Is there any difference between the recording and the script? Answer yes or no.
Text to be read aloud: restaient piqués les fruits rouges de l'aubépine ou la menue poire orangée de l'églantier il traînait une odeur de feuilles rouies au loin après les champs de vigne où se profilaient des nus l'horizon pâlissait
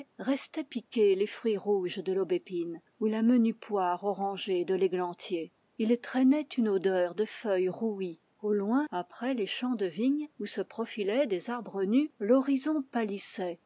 yes